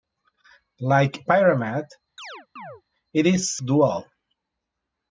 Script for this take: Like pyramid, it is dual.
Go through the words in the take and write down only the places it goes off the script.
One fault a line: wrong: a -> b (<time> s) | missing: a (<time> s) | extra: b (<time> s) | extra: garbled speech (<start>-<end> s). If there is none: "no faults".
no faults